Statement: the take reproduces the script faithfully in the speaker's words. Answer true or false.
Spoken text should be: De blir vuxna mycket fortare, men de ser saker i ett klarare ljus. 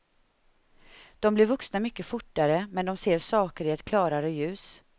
true